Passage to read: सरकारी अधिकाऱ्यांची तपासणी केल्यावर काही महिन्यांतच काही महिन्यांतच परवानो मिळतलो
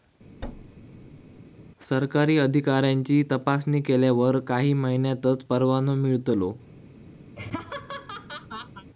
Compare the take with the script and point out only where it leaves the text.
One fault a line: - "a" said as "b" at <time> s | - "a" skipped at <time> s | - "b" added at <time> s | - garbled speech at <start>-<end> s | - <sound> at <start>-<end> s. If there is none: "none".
- thud at 0.4-1.4 s
- "काही महिन्यांतच" skipped at 5.4 s
- laugh at 7.3-8.9 s